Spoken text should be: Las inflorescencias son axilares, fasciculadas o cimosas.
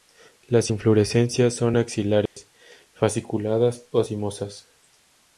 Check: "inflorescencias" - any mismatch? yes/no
no